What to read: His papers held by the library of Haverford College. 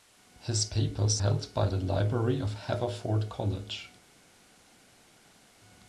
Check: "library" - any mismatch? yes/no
no